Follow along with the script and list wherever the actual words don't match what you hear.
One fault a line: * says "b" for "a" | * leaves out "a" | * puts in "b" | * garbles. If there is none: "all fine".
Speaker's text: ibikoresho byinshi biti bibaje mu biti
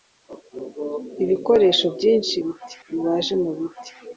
all fine